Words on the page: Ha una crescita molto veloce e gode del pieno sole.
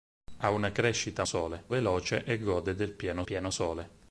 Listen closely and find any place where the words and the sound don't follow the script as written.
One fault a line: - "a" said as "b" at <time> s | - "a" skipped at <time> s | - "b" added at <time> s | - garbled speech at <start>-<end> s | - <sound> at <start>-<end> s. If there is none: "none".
- "molto" said as "sole" at 1.2 s
- "pieno" added at 3.2 s